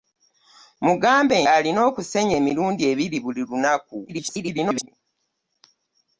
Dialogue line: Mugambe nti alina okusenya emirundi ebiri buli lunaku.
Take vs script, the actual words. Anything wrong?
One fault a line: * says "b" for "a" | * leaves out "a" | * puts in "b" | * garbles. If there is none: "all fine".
* leaves out "nti"
* garbles